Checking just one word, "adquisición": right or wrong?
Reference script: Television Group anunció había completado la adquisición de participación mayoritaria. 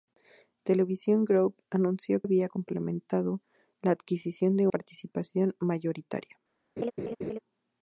right